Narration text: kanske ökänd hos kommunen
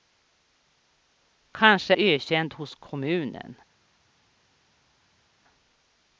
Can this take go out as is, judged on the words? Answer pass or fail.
pass